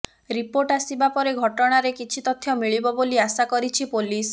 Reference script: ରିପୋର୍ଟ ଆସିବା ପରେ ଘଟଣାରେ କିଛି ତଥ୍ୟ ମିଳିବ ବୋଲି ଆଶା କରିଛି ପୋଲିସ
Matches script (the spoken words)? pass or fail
pass